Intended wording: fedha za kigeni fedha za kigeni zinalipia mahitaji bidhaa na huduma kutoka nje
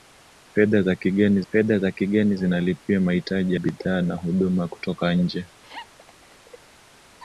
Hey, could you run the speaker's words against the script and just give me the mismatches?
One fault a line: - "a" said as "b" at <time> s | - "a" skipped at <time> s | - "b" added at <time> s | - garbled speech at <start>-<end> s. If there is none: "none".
none